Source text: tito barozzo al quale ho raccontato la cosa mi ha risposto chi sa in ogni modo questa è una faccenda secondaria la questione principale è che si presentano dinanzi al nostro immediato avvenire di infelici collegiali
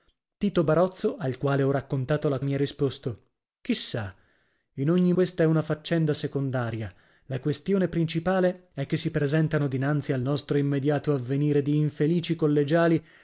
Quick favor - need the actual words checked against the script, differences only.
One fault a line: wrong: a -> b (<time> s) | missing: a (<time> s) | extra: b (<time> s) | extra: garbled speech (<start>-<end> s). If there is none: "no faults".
missing: cosa (2.4 s)
missing: modo (5.1 s)